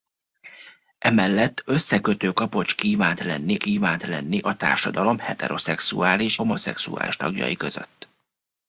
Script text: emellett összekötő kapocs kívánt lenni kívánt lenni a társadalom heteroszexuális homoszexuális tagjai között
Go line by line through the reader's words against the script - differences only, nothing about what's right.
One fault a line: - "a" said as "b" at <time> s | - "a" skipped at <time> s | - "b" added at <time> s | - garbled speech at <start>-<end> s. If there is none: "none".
none